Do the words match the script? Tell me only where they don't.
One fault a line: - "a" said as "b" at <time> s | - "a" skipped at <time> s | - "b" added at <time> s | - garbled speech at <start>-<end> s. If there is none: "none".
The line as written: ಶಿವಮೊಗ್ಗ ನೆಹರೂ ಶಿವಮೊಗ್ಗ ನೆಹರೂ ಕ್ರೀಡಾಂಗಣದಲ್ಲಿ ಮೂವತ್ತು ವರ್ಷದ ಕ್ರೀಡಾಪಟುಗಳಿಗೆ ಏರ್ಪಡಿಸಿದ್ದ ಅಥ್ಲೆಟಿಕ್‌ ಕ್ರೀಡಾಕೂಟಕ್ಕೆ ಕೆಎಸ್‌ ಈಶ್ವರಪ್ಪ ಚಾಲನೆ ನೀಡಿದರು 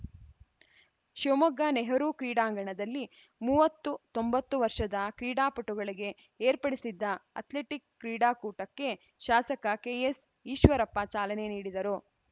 - "ಶಿವಮೊಗ್ಗ ನೆಹರೂ" skipped at 2.1 s
- "ತೊಂಬತ್ತು" added at 4.1 s
- "ಶಾಸಕ" added at 9.2 s